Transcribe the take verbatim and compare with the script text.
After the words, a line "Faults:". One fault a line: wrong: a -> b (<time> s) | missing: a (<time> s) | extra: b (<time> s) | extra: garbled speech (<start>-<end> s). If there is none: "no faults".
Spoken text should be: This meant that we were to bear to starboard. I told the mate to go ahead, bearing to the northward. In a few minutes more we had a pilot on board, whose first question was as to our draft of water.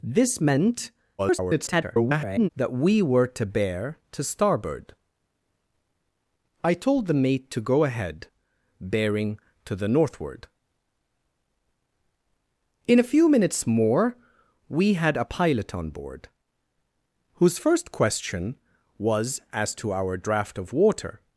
This meant [garbled] that we were to bear to starboard. I told the mate to go ahead, bearing to the northward. In a few minutes more we had a pilot on board, whose first question was as to our draft of water.
Faults:
extra: garbled speech (1.2-2.5 s)